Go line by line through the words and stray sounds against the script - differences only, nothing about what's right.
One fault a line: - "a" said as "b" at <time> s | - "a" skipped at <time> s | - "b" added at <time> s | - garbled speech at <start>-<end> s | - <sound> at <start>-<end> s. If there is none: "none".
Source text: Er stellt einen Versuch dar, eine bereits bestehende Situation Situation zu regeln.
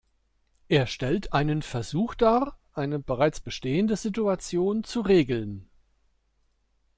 - "Situation" skipped at 4.8 s